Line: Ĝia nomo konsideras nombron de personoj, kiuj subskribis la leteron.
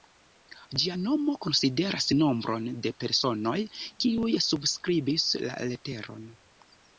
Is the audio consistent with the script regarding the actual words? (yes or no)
yes